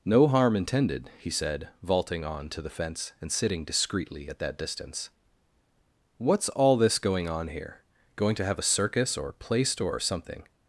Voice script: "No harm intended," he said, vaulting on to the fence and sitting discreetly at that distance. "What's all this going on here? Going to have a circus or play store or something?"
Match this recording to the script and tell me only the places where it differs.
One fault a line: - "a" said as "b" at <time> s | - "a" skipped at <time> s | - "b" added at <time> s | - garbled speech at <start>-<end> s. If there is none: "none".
none